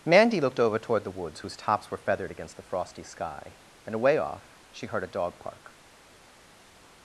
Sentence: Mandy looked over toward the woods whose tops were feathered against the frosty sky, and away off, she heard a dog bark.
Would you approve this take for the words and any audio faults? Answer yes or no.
no